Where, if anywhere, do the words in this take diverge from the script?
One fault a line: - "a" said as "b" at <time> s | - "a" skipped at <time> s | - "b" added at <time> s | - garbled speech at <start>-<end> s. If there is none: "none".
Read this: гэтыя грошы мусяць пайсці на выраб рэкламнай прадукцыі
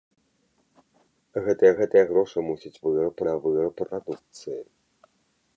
- "гэтыя" added at 1.8 s
- "пайсці" said as "выраб" at 2.8 s
- "рэкламнай" skipped at 3.7 s